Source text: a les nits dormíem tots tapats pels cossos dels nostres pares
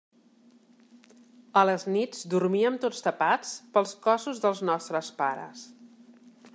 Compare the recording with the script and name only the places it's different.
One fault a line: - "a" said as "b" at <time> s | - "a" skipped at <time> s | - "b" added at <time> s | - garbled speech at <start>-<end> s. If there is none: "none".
none